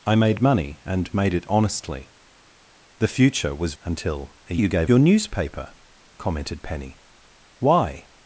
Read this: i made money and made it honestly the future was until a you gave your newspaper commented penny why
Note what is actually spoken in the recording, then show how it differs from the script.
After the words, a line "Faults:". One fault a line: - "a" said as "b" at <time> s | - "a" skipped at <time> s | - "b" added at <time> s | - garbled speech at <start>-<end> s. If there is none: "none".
i made money and made it honestly the future was until a you gave your newspaper commented penny why
Faults:
none